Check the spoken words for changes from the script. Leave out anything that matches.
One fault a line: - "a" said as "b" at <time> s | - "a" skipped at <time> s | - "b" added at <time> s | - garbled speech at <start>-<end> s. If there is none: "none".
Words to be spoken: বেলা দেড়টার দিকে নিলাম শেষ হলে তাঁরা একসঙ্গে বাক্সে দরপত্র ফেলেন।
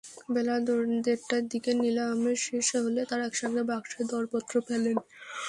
none